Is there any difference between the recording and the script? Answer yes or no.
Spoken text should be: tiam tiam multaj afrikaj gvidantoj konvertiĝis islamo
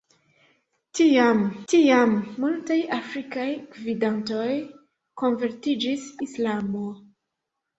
no